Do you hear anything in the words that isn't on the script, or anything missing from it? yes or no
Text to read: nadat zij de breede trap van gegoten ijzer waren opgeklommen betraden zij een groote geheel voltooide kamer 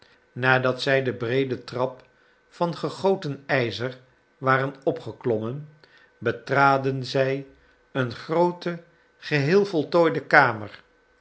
no